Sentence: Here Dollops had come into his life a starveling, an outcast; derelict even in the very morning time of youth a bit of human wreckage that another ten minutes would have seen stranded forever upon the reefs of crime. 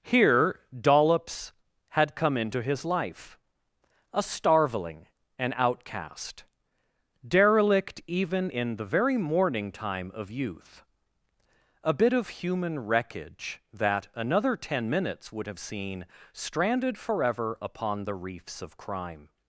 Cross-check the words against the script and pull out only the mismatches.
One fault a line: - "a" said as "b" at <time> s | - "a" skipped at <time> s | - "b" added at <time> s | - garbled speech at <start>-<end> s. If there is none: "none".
none